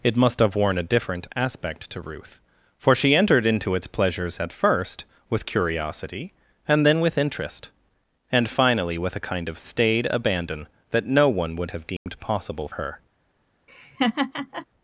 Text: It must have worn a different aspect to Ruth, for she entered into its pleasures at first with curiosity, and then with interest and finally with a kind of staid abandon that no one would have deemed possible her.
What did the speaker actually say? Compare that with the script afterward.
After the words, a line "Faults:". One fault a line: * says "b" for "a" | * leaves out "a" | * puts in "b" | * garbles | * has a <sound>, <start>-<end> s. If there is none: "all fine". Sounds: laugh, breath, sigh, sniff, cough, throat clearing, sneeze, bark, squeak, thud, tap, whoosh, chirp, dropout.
It must have worn a different aspect to Ruth, for she entered into its pleasures at first with curiosity, and then with interest and finally with a kind of staid abandon that no one would have deemed possible her.
Faults:
* has a dropout, 12.0-12.1 s
* has a laugh, 13.7-14.7 s